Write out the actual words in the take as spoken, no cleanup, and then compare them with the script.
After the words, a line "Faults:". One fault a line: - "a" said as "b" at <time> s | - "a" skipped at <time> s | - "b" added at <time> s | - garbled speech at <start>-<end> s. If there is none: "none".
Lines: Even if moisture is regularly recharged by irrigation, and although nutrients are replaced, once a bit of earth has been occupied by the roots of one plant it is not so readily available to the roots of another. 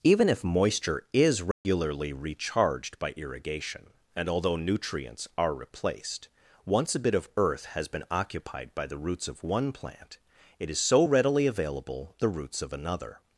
Even if moisture is regularly recharged by irrigation, and although nutrients are replaced, once a bit of earth has been occupied by the roots of one plant it is so readily available the roots of another.
Faults:
- "not" skipped at 10.8 s
- "to" skipped at 12.1 s